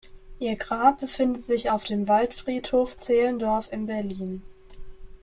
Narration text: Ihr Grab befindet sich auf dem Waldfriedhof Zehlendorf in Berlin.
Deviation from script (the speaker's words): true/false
false